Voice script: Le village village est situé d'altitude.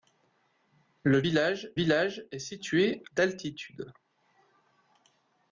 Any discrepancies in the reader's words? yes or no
no